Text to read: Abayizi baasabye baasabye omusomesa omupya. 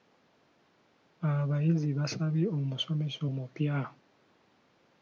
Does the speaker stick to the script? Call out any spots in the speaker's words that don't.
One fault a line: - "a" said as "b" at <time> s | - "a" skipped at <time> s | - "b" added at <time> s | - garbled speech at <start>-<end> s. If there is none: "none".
- "baasabye" skipped at 2.5 s